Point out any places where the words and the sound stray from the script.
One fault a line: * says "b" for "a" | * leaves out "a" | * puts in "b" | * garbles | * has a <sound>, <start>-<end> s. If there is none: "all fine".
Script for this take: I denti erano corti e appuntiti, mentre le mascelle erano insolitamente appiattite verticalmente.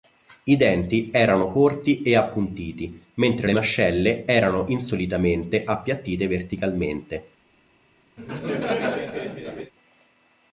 * has a laugh, 8.2-9.7 s